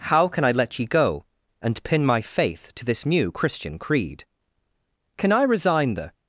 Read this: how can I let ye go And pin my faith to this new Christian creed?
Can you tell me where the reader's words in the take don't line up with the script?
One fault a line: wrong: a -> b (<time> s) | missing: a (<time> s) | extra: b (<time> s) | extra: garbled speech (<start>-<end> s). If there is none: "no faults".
extra: Can I resign the (5.2 s)